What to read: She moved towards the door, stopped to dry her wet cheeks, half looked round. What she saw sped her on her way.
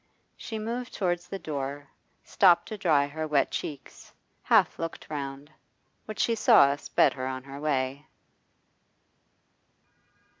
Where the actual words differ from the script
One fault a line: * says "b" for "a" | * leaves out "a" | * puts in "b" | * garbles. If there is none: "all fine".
all fine